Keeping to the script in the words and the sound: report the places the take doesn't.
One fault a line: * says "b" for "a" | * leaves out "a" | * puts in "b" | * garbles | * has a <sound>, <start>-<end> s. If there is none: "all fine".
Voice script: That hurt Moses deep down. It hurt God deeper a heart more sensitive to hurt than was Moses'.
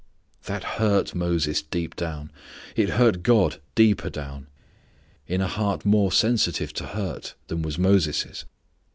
* puts in "down in"